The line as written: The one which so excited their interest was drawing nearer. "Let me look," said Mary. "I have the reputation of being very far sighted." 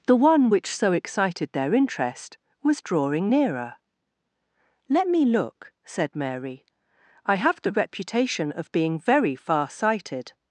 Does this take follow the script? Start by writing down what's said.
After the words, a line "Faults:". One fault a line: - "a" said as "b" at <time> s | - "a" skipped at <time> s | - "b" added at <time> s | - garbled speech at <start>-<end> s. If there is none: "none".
The one which so excited their interest was drawing nearer. "Let me look," said Mary. "I have the reputation of being very far sighted."
Faults:
none